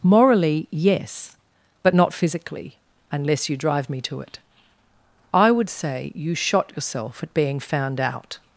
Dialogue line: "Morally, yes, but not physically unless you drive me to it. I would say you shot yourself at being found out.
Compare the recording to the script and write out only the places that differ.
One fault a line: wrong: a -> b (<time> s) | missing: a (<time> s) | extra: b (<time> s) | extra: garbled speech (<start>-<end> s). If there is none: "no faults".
no faults